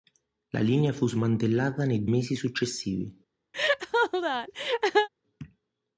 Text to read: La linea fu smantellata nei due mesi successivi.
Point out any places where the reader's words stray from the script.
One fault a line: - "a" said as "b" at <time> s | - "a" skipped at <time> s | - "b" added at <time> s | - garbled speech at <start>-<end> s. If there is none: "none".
- "due" skipped at 2.1 s